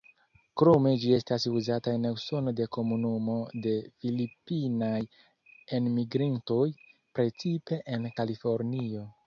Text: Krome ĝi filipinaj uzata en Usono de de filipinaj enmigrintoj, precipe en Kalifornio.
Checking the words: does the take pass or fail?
fail